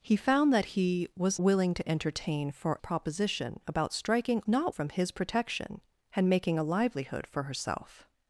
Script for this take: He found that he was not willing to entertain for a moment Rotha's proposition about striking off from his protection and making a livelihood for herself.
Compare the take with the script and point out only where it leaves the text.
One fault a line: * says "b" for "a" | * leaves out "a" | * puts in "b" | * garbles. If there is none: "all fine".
* leaves out "not"
* leaves out "a moment Rotha's"
* says "not" for "off"